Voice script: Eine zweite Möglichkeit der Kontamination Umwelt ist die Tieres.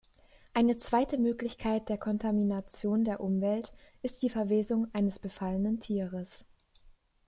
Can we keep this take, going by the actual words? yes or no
no